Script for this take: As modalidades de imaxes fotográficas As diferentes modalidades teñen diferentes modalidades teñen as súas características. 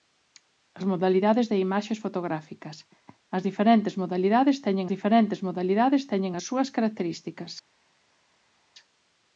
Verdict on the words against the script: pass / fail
pass